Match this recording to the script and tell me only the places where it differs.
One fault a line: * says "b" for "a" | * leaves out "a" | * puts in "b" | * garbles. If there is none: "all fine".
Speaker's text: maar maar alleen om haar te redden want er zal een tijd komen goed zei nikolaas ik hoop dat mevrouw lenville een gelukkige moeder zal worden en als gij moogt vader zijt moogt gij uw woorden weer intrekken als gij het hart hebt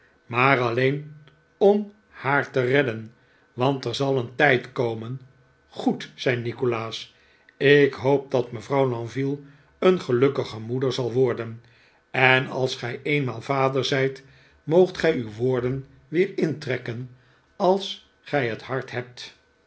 * leaves out "maar"
* says "eenmaal" for "moogt"